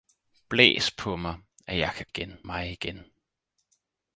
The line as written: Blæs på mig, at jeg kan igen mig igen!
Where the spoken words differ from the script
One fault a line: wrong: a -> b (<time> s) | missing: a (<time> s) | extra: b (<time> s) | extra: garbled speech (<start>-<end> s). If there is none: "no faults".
no faults